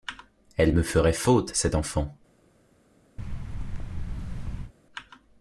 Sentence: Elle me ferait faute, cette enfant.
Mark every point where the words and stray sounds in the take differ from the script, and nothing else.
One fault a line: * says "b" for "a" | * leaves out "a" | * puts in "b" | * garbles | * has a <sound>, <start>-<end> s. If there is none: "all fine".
* has a thud, 3.2-4.7 s